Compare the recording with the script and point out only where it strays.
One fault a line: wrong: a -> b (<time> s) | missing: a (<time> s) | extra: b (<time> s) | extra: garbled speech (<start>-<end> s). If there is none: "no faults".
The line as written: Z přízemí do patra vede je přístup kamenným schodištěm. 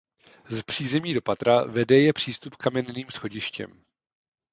no faults